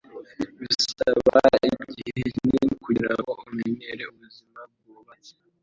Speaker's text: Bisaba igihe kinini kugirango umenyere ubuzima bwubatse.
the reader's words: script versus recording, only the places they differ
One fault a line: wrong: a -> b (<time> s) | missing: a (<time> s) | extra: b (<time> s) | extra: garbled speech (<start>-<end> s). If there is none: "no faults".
no faults